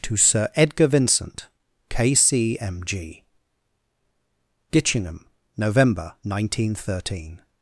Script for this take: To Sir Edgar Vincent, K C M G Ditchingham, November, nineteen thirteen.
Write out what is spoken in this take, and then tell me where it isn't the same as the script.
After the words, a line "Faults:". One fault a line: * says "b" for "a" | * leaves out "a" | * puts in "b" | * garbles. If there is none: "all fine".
To Sir Edgar Vincent, K C M G Ditchingham, November, nineteen thirteen.
Faults:
all fine